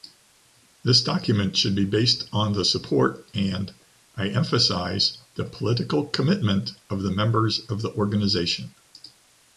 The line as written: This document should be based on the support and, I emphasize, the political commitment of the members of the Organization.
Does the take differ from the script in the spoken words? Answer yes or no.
no